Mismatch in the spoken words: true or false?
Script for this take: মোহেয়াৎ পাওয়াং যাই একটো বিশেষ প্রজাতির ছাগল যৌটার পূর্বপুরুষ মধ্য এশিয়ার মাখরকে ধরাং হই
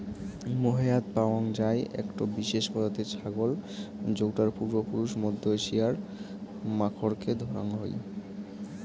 false